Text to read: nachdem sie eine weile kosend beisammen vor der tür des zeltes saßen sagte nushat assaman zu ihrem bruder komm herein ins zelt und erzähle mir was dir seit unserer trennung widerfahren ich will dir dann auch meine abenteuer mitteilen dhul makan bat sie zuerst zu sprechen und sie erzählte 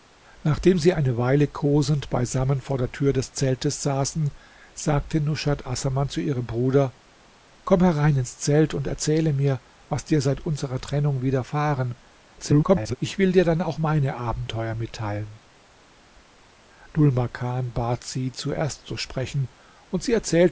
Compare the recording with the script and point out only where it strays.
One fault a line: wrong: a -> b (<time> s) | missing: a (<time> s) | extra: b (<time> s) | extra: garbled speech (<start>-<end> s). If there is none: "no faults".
extra: garbled speech (12.4-13.0 s)